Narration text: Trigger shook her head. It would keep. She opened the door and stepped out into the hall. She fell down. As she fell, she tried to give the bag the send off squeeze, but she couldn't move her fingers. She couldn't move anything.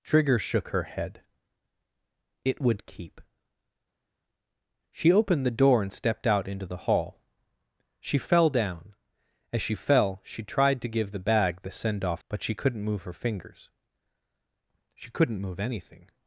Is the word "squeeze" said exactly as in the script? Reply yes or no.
no